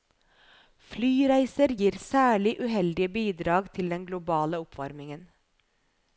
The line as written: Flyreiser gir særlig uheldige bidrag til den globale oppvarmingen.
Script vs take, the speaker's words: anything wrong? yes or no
no